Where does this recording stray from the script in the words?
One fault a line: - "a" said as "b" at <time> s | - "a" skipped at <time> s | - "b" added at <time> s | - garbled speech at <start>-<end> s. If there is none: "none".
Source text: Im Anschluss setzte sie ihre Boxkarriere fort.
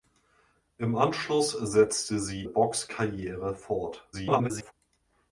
- "ihre" skipped at 2.4 s
- garbled speech at 4.1-4.7 s